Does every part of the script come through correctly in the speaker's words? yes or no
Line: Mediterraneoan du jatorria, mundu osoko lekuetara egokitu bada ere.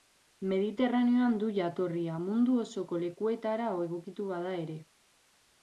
yes